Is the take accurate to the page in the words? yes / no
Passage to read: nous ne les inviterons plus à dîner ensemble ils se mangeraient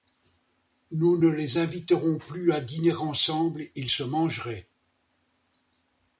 yes